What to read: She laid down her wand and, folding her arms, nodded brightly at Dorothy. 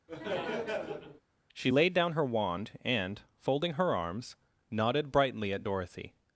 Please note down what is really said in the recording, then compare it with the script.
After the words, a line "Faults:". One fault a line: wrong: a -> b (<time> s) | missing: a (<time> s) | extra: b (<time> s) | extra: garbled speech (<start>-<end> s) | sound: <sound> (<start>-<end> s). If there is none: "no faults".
She laid down her wand and, folding her arms, nodded brightly at Dorothy.
Faults:
sound: laugh (0.1-1.2 s)